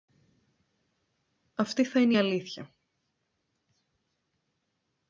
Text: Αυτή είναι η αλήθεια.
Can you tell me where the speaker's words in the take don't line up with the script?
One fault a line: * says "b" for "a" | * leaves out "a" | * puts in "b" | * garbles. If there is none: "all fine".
* puts in "θα"